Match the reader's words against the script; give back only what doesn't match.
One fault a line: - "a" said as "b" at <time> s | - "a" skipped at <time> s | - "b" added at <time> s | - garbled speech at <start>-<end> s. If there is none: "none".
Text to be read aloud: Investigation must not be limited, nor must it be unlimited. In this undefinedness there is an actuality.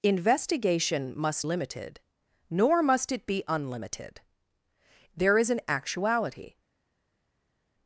- "not be" skipped at 1.4 s
- "In this undefinedness" skipped at 4.2 s